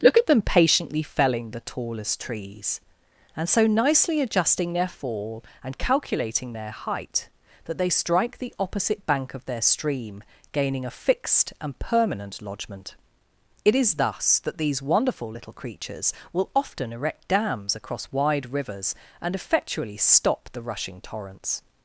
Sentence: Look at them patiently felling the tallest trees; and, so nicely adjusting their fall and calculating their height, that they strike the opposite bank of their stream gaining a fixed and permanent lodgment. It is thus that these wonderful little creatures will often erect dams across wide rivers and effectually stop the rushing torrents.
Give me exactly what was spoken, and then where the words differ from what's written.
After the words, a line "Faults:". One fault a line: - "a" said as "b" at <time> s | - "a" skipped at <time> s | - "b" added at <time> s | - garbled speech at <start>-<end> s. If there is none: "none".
Look at them patiently felling the tallest trees; and, so nicely adjusting their fall and calculating their height, that they strike the opposite bank of their stream gaining a fixed and permanent lodgment. It is thus that these wonderful little creatures will often erect dams across wide rivers and effectually stop the rushing torrents.
Faults:
none